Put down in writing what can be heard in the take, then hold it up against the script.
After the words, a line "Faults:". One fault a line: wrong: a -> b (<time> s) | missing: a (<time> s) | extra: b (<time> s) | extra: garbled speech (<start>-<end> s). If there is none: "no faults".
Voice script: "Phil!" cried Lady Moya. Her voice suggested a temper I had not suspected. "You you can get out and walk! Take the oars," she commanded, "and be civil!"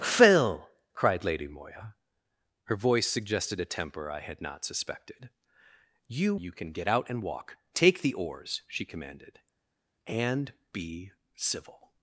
"Phil!" cried Lady Moya. Her voice suggested a temper I had not suspected. "You you can get out and walk! Take the oars," she commanded, "and be civil!"
Faults:
no faults